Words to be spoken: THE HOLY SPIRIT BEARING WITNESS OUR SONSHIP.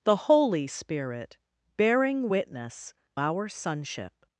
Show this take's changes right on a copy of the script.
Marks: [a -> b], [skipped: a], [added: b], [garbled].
THE HOLY SPIRIT BEARING WITNESS OUR SONSHIP.